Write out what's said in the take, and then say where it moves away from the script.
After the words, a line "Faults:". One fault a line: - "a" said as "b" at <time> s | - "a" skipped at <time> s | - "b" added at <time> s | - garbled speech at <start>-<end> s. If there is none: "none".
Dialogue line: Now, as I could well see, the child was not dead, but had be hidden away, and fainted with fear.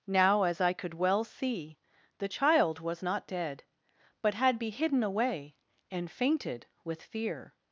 Now, as I could well see, the child was not dead, but had be hidden away, and fainted with fear.
Faults:
none